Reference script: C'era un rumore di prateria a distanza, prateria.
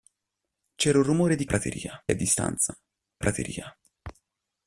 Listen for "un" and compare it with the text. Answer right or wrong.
right